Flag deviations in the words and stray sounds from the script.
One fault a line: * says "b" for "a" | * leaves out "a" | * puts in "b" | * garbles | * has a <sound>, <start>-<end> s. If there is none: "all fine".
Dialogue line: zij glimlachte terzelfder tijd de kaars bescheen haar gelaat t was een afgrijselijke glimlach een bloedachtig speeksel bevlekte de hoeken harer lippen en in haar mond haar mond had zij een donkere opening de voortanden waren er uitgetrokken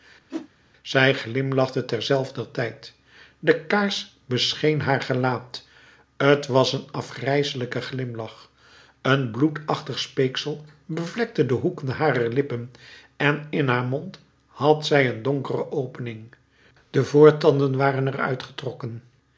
* has a whoosh, 0.3-0.5 s
* leaves out "haar mond"